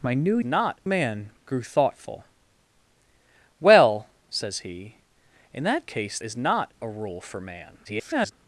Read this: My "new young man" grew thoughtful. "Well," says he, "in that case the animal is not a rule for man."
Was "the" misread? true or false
true